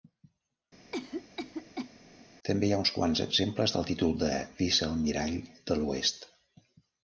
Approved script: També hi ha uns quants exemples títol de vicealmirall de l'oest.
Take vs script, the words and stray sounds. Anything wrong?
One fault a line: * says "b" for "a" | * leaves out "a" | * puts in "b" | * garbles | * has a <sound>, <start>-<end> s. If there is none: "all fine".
* has a cough, 0.9-1.9 s
* puts in "del"